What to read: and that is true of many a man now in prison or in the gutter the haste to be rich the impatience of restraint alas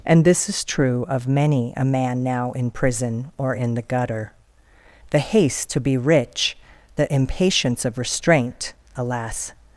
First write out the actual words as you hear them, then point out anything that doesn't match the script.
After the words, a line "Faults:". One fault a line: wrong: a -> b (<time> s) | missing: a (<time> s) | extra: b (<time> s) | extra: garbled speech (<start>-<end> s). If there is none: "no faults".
and this is true of many a man now in prison or in the gutter the haste to be rich the impatience of restraint alas
Faults:
wrong: that -> this (0.2 s)